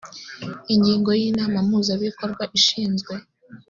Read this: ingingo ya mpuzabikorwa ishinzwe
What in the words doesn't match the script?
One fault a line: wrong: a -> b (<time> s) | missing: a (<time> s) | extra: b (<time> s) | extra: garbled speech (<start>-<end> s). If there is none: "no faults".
extra: inama (1.3 s)